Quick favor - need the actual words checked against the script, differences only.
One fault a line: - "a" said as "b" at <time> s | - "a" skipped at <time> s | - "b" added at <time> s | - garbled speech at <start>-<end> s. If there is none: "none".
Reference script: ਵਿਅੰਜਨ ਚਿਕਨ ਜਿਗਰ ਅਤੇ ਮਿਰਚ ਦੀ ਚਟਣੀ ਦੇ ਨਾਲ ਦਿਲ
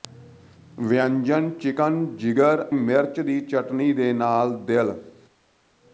- "ਅਤੇ" skipped at 2.6 s